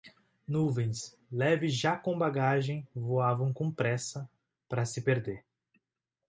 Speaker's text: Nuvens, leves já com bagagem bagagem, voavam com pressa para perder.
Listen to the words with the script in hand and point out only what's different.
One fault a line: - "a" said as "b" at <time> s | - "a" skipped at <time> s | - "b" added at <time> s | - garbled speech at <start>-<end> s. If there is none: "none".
- "bagagem" skipped at 2.9 s
- "se" added at 4.8 s